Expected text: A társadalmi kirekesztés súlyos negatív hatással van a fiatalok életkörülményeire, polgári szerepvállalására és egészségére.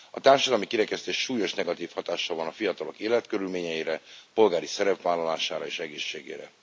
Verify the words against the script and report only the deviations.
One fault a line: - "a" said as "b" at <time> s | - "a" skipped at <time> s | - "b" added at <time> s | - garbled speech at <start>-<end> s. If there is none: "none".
none